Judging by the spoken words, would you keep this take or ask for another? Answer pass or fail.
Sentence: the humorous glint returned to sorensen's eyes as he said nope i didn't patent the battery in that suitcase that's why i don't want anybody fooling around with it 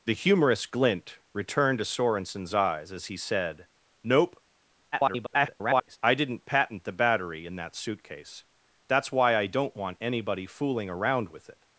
fail